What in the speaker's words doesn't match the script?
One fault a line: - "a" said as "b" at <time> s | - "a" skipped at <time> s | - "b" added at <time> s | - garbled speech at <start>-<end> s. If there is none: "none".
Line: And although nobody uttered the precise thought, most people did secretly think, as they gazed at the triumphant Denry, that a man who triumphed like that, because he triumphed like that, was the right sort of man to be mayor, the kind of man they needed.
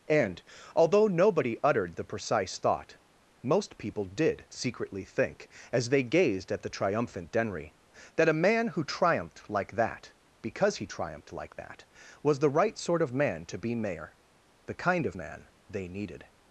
none